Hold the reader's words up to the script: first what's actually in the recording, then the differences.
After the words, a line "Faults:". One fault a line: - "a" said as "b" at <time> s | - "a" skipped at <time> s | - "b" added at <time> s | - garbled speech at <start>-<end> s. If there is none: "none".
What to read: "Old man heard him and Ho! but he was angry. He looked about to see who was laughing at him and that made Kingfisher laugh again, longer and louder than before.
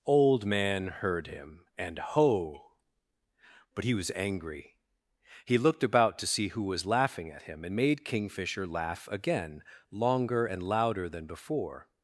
"Old man heard him and Ho! but he was angry. He looked about to see who was laughing at him and made Kingfisher laugh again, longer and louder than before.
Faults:
- "that" skipped at 7.8 s